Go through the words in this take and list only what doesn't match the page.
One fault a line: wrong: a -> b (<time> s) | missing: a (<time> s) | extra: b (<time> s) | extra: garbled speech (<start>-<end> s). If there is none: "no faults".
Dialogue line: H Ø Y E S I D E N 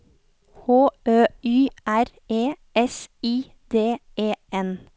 extra: R (1.9 s)